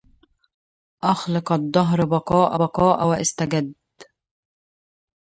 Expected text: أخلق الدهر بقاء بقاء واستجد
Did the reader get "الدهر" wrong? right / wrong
right